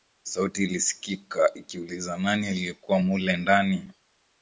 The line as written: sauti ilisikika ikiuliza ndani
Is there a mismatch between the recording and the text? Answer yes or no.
yes